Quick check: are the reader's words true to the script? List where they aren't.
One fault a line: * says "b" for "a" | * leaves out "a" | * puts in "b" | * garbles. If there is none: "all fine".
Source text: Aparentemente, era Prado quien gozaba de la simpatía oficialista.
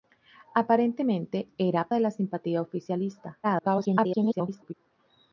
* leaves out "Prado quien gozaba"
* garbles